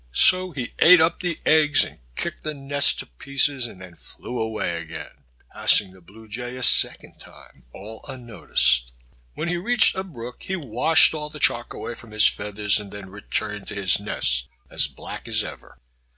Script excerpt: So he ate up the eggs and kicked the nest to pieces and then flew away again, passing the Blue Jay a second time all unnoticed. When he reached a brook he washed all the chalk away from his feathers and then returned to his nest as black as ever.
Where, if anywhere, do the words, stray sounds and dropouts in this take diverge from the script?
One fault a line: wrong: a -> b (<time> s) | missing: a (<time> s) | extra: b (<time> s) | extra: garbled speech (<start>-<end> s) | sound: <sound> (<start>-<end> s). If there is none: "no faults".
no faults